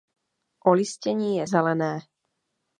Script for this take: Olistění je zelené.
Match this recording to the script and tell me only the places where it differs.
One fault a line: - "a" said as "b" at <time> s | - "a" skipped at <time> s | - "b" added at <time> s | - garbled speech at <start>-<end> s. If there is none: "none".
none